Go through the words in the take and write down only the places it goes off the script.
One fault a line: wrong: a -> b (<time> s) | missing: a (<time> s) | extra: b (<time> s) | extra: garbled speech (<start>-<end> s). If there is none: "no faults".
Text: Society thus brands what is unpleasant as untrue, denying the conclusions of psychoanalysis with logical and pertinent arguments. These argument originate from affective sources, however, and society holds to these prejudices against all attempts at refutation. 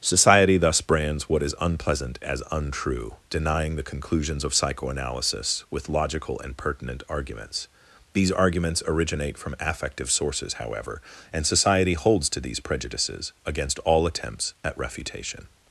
wrong: argument -> arguments (8.3 s)